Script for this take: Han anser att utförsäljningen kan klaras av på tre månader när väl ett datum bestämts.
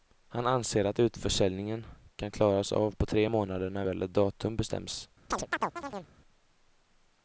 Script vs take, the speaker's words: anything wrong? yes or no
no